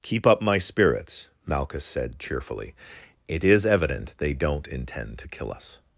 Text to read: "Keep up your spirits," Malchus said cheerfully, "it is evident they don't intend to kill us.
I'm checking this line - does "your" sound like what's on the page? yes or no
no